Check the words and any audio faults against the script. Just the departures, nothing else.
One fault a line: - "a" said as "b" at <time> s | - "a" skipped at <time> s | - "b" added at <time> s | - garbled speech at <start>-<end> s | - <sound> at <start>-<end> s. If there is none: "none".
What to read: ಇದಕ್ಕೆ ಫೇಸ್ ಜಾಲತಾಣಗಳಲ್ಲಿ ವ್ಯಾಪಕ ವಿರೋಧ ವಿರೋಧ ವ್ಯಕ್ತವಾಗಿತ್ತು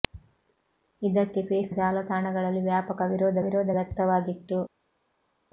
none